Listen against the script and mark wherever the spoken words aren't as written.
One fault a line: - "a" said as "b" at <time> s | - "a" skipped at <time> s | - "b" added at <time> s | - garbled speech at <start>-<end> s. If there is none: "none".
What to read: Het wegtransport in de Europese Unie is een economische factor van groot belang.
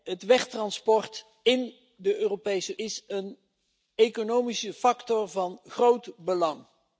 - "Unie" skipped at 2.8 s